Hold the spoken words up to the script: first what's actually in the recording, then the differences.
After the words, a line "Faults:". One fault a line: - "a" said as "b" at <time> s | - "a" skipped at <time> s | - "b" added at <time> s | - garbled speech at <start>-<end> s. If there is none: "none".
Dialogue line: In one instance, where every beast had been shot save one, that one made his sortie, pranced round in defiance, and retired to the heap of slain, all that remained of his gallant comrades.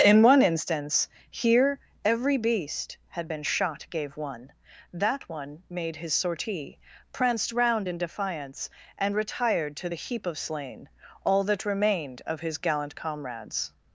In one instance, here every beast had been shot gave one, that one made his sortie, pranced round in defiance, and retired to the heap of slain, all that remained of his gallant comrades.
Faults:
- "where" said as "here" at 1.3 s
- "save" said as "gave" at 3.9 s